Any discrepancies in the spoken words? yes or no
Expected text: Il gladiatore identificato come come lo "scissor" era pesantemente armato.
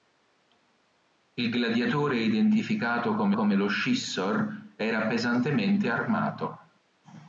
no